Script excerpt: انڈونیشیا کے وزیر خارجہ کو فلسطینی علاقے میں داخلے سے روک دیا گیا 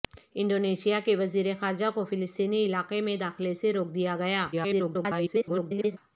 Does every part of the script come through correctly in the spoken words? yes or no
no